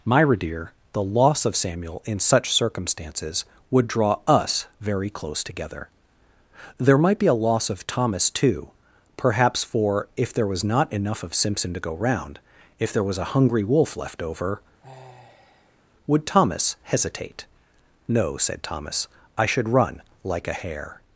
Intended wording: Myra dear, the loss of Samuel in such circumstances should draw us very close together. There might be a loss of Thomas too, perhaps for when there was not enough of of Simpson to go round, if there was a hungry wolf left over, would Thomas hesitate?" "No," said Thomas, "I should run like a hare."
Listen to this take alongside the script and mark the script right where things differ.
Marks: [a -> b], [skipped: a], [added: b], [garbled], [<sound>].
Myra dear, the loss of Samuel in such circumstances [should -> would] draw us very close together. There might be a loss of Thomas too, perhaps for [when -> if] there was not enough of [skipped: of] Simpson to go round, if there was a hungry wolf left over, [sigh] would Thomas hesitate?" "No," said Thomas, "I should run like a hare."